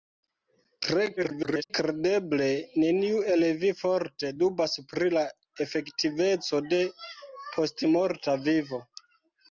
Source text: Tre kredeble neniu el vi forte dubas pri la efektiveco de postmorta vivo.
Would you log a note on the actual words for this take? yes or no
yes